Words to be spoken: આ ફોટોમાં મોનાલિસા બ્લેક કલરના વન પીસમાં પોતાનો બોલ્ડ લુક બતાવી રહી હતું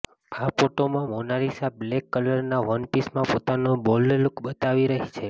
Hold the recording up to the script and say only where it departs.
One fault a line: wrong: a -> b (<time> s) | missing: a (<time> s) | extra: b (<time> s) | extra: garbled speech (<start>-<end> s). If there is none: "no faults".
wrong: હતું -> છે (5.1 s)